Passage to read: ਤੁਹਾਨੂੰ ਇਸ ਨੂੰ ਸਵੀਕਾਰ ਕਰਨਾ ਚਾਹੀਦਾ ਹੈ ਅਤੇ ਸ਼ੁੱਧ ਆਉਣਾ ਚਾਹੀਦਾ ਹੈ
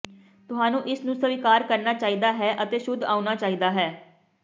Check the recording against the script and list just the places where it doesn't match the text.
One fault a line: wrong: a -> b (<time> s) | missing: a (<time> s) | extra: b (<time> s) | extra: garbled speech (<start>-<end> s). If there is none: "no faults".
no faults